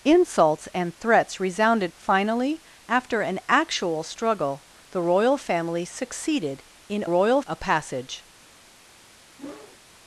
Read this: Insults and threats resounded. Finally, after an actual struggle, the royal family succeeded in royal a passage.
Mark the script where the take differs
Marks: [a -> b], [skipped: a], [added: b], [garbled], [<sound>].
Insults and threats resounded. Finally, after an actual struggle, the royal family succeeded in royal a passage. [whoosh]